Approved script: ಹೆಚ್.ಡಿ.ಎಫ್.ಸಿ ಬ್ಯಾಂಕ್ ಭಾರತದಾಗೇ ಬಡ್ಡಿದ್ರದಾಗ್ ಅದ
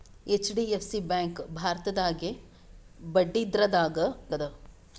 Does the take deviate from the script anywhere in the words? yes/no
no